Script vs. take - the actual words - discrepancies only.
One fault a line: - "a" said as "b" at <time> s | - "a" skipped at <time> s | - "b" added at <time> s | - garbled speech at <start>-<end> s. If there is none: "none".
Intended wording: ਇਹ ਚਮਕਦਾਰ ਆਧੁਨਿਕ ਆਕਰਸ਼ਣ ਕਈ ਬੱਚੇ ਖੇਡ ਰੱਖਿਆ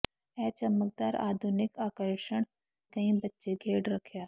none